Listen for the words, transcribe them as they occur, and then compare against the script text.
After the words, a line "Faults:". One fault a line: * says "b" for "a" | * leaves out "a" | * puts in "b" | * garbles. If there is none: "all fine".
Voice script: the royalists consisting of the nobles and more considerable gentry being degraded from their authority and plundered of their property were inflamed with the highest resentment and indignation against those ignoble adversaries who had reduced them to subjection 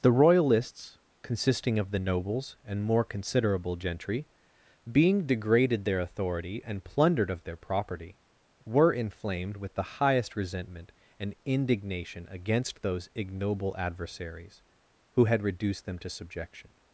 the royalists consisting of the nobles and more considerable gentry being degraded their authority and plundered of their property were inflamed with the highest resentment and indignation against those ignoble adversaries who had reduced them to subjection
Faults:
* leaves out "from"